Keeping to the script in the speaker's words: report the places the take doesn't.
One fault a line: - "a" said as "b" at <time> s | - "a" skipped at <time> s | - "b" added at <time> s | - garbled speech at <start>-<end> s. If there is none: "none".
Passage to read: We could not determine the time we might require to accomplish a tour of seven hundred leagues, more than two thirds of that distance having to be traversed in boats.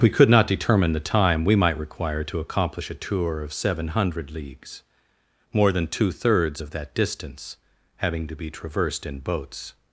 none